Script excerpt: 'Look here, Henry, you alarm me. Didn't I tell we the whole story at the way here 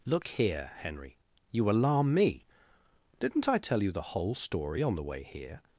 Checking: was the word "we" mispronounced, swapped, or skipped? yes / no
yes